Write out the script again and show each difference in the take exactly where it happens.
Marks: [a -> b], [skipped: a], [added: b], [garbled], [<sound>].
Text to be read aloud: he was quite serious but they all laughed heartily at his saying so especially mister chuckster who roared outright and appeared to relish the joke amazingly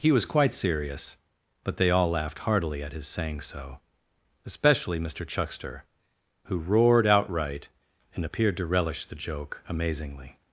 he was quite serious but they all laughed heartily at his saying so especially mister chuckster who roared outright and appeared to relish the joke amazingly